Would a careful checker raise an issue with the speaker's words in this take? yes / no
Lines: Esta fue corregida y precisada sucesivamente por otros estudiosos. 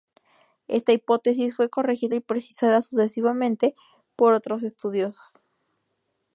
yes